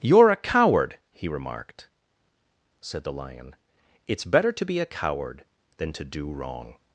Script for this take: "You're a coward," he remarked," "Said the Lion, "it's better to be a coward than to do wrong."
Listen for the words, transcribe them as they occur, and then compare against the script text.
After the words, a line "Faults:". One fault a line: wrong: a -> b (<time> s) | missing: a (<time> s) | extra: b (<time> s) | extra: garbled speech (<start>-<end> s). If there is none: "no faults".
"You're a coward," he remarked," "Said the Lion, "it's better to be a coward than to do wrong."
Faults:
no faults